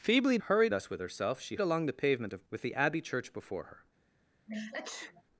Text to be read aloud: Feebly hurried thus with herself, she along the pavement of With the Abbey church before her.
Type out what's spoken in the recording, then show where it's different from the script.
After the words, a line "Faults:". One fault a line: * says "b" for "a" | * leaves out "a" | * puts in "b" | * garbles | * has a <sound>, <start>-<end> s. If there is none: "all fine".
Feebly hurried thus with herself, she along the pavement of With the Abbey church before her.
Faults:
* has a sneeze, 4.5-5.2 s